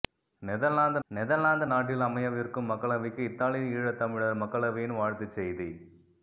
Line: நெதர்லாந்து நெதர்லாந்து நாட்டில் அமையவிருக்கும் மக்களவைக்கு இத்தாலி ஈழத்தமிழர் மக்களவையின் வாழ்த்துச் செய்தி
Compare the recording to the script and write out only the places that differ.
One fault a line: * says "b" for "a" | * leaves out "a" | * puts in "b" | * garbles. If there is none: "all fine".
all fine